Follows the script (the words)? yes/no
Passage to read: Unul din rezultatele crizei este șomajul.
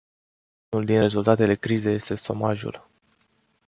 yes